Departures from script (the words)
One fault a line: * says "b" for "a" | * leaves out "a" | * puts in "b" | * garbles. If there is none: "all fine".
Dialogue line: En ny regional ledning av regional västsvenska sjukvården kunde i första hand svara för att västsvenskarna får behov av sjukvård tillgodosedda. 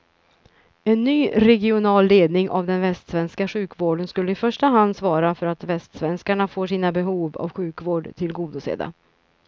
* says "den" for "regional"
* says "skulle" for "kunde"
* puts in "sina"